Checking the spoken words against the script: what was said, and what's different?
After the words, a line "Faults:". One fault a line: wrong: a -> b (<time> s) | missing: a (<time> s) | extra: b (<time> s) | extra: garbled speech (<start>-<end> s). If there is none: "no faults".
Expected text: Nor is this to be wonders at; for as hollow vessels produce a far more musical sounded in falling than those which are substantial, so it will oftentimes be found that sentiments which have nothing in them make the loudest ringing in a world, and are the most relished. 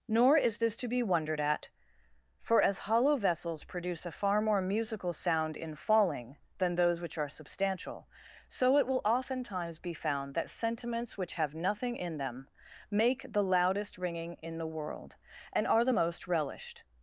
Nor is this to be wondered at; for as hollow vessels produce a far more musical sound in falling than those which are substantial, so it will oftentimes be found that sentiments which have nothing in them make the loudest ringing in the world, and are the most relished.
Faults:
wrong: wonders -> wondered (1.0 s)
wrong: sounded -> sound (5.1 s)
wrong: a -> the (14.6 s)